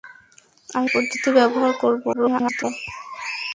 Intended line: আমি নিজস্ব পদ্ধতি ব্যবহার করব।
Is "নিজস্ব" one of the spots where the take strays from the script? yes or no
yes